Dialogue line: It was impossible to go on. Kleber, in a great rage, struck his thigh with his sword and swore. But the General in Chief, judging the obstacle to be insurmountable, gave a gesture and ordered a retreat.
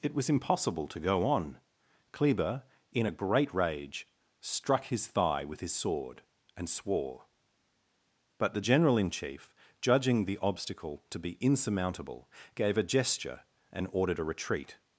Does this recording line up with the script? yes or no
yes